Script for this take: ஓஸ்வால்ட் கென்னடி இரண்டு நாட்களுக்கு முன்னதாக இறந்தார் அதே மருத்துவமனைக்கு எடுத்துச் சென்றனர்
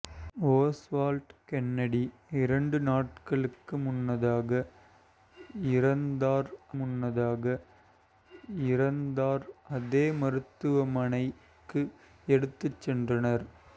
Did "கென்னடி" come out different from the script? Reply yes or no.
no